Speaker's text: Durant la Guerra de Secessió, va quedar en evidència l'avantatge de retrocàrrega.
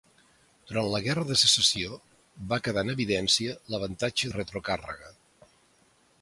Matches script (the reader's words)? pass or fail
pass